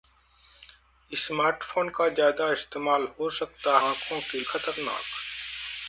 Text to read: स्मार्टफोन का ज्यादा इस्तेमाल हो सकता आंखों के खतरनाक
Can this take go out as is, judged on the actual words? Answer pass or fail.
pass